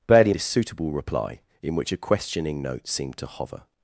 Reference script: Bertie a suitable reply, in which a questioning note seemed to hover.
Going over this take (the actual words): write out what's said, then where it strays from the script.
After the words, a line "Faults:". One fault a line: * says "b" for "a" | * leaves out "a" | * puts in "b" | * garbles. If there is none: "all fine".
Bertie a suitable reply, in which a questioning note seemed to hover.
Faults:
all fine